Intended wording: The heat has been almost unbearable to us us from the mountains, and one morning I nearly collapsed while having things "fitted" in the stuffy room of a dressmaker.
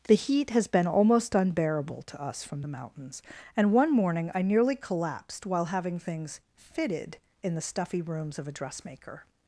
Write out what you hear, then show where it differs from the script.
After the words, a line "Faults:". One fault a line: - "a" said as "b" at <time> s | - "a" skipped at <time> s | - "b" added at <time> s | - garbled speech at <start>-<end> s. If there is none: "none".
The heat has been almost unbearable to us from the mountains, and one morning I nearly collapsed while having things "fitted" in the stuffy rooms of a dressmaker.
Faults:
- "us" skipped at 2.4 s
- "room" said as "rooms" at 8.0 s